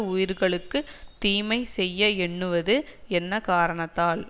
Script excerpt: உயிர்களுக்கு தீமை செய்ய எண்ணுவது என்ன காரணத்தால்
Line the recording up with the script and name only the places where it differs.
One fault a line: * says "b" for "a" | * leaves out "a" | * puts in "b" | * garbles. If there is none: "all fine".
all fine